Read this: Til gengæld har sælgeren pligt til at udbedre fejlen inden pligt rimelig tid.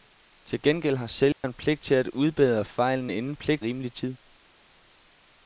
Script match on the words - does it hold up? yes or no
yes